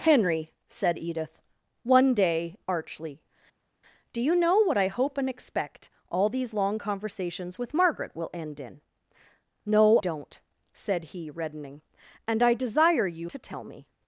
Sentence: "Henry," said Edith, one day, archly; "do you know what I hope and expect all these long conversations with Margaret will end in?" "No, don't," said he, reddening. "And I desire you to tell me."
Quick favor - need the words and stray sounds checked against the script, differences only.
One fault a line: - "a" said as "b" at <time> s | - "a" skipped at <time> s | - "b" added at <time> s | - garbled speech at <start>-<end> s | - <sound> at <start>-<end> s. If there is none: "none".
none